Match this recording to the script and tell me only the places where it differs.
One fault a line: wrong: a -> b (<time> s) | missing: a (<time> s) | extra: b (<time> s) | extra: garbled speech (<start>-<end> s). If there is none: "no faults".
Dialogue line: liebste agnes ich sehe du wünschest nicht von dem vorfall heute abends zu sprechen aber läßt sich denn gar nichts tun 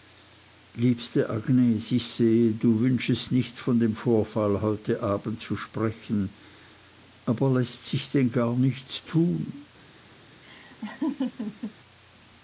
no faults